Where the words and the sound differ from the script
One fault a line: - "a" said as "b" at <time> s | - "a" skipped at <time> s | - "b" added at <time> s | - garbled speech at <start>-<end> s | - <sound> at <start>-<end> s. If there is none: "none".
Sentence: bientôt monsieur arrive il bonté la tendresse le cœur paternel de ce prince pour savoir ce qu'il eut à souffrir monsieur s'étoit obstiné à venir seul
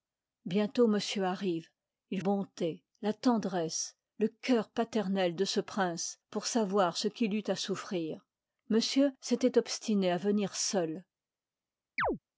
- chirp at 12.0-12.2 s